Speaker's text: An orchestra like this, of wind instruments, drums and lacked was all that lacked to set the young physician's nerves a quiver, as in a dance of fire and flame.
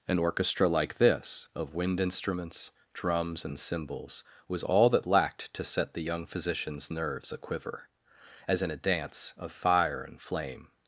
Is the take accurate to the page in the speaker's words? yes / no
no